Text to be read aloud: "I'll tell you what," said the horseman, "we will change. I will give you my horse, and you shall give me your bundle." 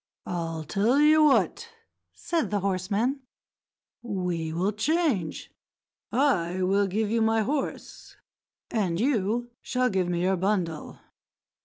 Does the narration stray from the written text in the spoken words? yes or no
no